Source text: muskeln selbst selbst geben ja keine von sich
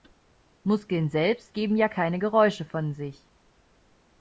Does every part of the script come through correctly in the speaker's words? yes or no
no